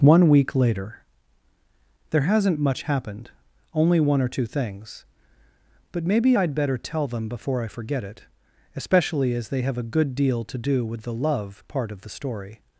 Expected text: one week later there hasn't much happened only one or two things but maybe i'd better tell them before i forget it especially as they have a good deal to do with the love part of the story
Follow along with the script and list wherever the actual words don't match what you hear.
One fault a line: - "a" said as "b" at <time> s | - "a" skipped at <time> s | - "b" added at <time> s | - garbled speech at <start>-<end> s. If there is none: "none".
none